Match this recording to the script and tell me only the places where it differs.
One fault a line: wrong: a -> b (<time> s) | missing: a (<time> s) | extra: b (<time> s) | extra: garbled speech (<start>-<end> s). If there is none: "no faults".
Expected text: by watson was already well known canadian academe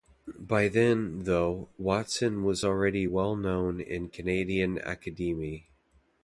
extra: then though (0.7 s)
extra: in (3.8 s)